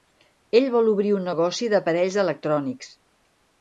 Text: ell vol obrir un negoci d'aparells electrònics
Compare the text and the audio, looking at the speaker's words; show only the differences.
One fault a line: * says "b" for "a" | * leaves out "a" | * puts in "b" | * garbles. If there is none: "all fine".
all fine